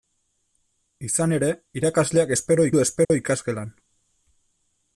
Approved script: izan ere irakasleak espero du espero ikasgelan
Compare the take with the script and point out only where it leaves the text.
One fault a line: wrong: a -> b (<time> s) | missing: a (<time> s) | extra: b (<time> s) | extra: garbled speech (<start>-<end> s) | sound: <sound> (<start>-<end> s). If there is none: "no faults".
sound: dropout (3.0-3.1 s)